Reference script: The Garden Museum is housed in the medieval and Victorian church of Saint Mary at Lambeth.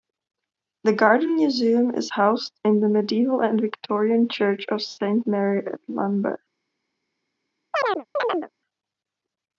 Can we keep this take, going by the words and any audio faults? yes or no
no